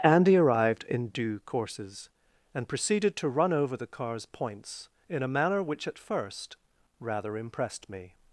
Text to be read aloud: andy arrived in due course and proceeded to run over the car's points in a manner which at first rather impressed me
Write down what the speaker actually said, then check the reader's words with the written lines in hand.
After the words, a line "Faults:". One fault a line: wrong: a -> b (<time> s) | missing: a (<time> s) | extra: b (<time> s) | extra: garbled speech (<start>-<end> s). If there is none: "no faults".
andy arrived in due courses and proceeded to run over the car's points in a manner which at first rather impressed me
Faults:
wrong: course -> courses (1.4 s)